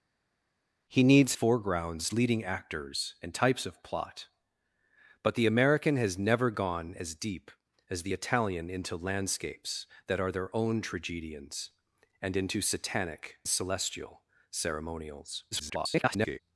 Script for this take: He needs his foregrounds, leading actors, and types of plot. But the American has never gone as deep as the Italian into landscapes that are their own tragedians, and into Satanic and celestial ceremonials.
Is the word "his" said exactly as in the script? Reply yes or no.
no